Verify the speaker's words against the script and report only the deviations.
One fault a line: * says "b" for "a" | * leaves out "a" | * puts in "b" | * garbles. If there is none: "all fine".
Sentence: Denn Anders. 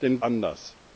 all fine